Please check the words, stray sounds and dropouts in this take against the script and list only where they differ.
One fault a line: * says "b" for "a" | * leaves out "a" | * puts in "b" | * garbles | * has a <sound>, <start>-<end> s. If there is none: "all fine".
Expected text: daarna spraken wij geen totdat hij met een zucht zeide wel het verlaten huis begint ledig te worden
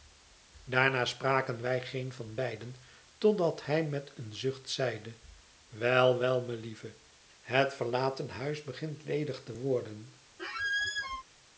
* puts in "van beiden"
* puts in "wel melieve"
* has a squeak, 10.4-11.2 s